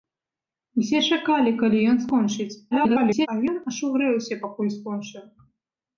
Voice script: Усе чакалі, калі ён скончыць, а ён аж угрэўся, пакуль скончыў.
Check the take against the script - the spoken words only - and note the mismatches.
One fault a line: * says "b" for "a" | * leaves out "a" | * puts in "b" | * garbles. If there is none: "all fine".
* garbles